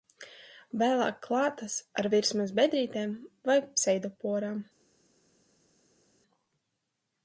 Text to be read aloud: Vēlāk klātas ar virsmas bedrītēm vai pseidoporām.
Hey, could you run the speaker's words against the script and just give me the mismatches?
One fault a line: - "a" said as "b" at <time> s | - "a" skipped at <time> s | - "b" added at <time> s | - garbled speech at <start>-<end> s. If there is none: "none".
none